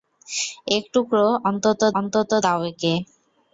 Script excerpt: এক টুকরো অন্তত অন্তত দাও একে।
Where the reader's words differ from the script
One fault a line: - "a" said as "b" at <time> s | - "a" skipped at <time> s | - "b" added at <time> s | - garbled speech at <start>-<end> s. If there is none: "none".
none